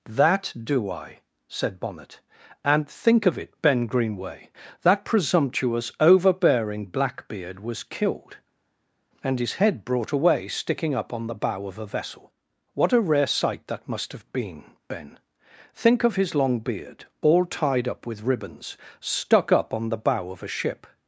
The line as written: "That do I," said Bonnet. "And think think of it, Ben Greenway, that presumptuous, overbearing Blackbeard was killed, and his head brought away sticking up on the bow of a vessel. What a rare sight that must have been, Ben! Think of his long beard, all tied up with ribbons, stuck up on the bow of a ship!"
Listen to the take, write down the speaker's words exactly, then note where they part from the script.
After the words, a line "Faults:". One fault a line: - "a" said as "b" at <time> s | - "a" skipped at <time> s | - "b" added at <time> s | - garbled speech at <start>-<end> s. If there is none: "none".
"That do I," said Bonnet. "And think of it, Ben Greenway, that presumptuous, overbearing Blackbeard was killed, and his head brought away sticking up on the bow of a vessel. What a rare sight that must have been, Ben! Think of his long beard, all tied up with ribbons, stuck up on the bow of a ship!"
Faults:
- "think" skipped at 3.3 s